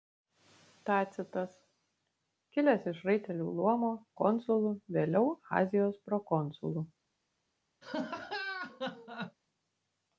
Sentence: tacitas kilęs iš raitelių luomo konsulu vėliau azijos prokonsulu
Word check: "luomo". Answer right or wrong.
right